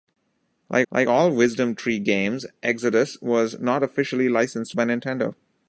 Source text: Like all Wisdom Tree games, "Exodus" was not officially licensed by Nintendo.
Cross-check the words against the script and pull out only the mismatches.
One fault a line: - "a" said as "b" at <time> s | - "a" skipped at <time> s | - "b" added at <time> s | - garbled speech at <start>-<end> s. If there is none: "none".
- "like" added at 0.9 s